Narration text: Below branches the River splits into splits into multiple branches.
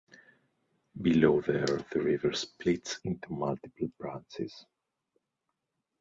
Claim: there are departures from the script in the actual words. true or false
true